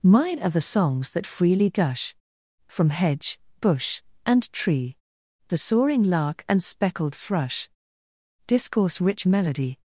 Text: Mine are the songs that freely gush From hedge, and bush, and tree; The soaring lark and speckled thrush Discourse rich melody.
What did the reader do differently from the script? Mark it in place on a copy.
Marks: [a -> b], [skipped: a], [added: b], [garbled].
Mine are the songs that freely gush From hedge, [skipped: and] bush, and tree; The soaring lark and speckled thrush Discourse rich melody.